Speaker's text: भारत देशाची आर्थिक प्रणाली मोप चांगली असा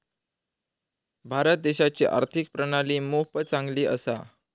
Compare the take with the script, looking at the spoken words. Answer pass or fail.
pass